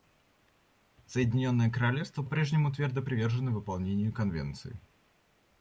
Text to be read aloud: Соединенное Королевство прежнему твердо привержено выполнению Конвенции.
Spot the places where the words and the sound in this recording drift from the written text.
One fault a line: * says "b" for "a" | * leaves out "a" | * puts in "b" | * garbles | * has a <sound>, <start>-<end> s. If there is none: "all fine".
all fine